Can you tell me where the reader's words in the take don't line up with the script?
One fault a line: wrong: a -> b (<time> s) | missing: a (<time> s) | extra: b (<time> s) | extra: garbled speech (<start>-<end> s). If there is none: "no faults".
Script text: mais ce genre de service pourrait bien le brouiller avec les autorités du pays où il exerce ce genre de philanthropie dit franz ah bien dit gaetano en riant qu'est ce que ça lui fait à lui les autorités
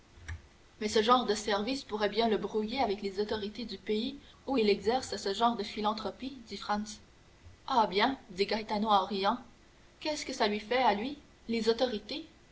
no faults